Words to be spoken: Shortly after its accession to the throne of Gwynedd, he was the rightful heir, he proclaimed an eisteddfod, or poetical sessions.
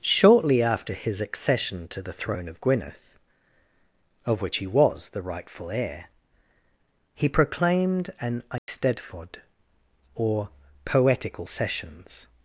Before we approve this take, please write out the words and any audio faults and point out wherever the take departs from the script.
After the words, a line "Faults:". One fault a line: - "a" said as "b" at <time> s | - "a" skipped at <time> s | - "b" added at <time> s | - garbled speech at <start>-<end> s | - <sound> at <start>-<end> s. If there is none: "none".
Shortly after his accession to the throne of Gwynedd, of which he was the rightful heir, he proclaimed an eisteddfod, or poetical sessions.
Faults:
- "its" said as "his" at 0.9 s
- "of which" added at 4.2 s
- dropout at 8.6-8.7 s